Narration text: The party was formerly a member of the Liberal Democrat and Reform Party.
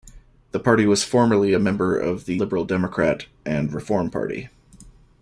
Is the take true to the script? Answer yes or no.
yes